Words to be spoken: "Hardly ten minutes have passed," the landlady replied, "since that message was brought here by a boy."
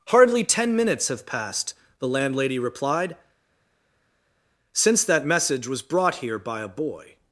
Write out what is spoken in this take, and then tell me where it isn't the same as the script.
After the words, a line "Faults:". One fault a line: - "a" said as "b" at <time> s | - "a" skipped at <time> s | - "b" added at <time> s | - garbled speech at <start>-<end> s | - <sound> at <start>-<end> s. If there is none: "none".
"Hardly ten minutes have passed," the landlady replied, "since that message was brought here by a boy."
Faults:
none